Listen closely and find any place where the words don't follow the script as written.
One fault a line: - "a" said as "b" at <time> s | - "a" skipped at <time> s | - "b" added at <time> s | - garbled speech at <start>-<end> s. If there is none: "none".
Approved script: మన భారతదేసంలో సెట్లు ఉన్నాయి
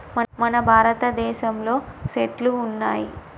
none